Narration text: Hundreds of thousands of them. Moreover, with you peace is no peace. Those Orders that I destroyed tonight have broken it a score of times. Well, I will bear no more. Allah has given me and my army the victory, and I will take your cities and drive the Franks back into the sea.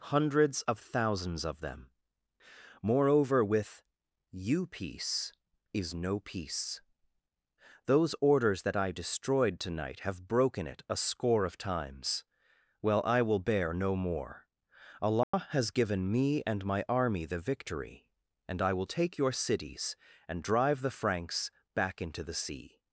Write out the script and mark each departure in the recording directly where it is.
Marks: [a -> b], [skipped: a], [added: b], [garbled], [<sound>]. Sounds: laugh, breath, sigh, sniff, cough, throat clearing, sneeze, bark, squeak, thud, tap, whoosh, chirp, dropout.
Hundreds of thousands of them. Moreover, with you peace is no peace. Those Orders that I destroyed tonight have broken it a score of times. Well, I will bear no more. Allah [dropout] has given me and my army the victory, and I will take your cities and drive the Franks back into the sea.